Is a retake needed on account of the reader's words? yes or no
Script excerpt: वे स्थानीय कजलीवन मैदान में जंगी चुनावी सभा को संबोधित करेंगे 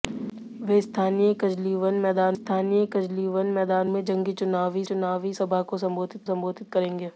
yes